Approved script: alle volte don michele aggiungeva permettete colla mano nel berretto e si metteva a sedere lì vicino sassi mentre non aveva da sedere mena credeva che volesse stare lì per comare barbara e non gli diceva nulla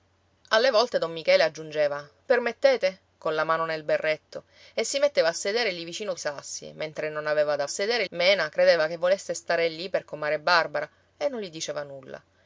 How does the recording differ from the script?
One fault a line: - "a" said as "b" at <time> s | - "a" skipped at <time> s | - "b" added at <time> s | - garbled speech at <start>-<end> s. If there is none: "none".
none